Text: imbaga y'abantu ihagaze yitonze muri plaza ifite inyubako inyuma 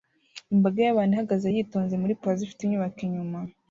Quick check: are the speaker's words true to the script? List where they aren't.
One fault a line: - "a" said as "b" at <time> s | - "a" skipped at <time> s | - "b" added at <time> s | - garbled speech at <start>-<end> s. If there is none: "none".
none